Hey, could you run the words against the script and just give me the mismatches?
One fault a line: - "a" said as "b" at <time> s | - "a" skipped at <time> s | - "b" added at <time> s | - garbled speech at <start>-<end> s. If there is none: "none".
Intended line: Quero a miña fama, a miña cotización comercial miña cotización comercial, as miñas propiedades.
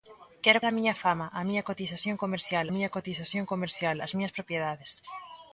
none